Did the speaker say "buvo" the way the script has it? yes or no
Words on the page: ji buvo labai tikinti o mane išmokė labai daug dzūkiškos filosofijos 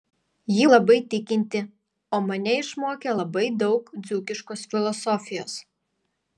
no